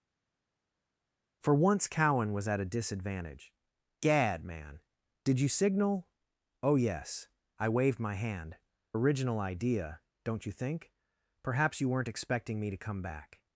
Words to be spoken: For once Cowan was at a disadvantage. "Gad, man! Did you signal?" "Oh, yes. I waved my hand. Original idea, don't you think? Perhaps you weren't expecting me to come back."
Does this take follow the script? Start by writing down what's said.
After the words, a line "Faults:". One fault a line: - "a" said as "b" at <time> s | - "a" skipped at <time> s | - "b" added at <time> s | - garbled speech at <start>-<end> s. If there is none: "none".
For once Cowan was at a disadvantage. "Gad, man! Did you signal?" "Oh, yes. I waved my hand. Original idea, don't you think? Perhaps you weren't expecting me to come back."
Faults:
none